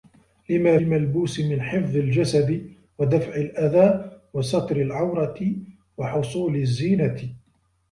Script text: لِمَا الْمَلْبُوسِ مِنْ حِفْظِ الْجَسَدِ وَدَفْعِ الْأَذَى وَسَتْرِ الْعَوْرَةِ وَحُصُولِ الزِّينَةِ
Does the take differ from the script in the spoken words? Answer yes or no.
no